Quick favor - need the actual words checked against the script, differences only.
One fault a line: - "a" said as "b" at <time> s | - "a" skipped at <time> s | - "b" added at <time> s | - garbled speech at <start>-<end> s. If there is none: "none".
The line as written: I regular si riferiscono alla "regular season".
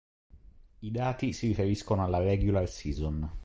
- "regular" said as "dati" at 0.9 s